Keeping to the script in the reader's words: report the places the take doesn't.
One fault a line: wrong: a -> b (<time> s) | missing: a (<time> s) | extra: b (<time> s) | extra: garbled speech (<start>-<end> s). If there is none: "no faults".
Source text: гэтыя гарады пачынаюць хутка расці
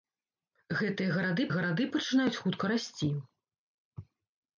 extra: гарады (1.6 s)